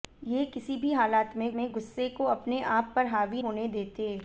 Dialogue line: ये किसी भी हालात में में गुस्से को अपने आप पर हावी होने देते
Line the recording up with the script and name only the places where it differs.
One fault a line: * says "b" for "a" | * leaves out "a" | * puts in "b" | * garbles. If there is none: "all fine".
all fine